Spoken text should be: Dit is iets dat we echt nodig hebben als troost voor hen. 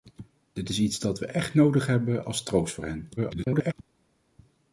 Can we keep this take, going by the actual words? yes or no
no